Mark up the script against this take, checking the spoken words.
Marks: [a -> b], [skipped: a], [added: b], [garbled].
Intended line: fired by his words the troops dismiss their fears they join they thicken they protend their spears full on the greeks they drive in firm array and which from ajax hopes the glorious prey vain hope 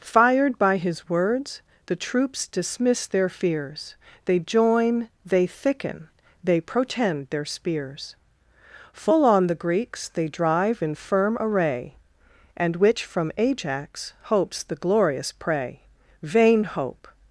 fired by his words the troops dismiss their fears they join they thicken they protend their spears full on the greeks they drive in firm array and which from ajax hopes the glorious prey vain hope